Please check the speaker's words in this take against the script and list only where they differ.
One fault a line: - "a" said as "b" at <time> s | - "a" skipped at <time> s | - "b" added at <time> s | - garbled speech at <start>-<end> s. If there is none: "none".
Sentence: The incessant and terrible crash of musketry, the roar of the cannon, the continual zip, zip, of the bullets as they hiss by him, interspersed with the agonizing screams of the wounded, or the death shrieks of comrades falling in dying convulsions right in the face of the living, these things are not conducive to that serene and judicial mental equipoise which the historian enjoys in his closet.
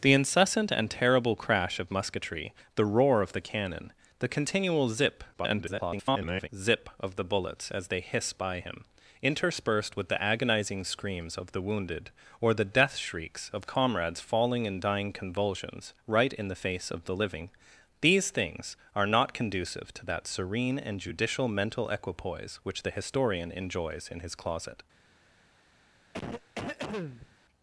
- garbled speech at 5.3-6.5 s